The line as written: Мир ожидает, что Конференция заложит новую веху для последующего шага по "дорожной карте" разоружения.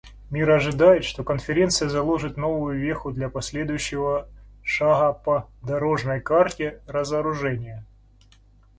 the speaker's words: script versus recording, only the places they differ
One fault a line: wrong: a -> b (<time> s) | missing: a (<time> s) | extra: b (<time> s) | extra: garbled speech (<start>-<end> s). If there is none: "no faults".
no faults